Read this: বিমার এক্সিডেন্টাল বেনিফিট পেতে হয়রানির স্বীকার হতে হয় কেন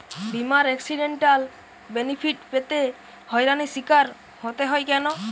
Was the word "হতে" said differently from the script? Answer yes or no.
no